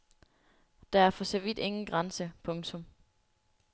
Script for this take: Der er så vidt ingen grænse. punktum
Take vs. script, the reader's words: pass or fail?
fail